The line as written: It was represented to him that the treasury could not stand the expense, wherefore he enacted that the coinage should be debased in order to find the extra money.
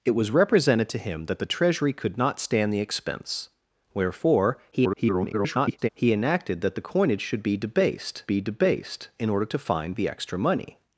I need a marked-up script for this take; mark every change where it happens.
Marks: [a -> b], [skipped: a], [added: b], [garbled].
It was represented to him that the treasury could not stand the expense, wherefore [garbled] he enacted that the coinage should be debased [added: be debased] in order to find the extra money.